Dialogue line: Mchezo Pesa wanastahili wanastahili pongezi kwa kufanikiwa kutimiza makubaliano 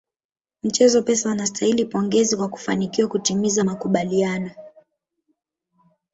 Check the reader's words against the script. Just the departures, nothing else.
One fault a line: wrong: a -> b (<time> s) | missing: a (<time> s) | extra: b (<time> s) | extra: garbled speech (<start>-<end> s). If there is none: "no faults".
missing: wanastahili (1.8 s)